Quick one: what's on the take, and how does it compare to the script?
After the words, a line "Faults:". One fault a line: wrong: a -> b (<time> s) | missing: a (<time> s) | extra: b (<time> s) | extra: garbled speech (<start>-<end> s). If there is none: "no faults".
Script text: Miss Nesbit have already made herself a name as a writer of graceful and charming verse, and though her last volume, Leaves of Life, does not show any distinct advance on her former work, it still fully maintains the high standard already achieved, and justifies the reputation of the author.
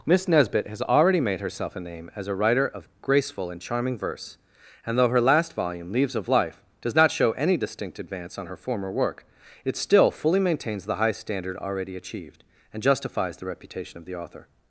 Miss Nesbit has already made herself a name as a writer of graceful and charming verse, and though her last volume, Leaves of Life, does not show any distinct advance on her former work, it still fully maintains the high standard already achieved, and justifies the reputation of the author.
Faults:
wrong: have -> has (0.7 s)